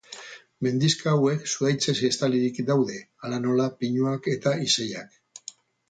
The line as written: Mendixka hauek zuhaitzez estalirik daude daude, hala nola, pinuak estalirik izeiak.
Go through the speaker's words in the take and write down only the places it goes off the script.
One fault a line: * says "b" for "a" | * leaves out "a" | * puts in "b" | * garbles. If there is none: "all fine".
* leaves out "daude"
* says "eta" for "estalirik"